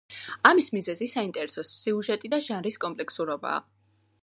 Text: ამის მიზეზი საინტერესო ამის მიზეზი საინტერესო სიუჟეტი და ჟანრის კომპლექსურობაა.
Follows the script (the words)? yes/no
no